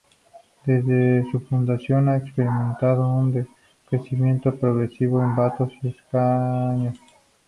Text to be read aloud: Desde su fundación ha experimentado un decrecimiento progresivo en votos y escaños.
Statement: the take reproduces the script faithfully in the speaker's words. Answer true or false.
true